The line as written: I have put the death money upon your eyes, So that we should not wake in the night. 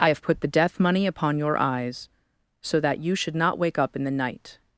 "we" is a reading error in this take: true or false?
true